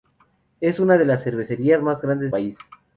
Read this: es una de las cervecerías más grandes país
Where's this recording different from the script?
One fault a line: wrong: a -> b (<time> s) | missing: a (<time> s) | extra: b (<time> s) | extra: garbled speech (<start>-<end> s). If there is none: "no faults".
no faults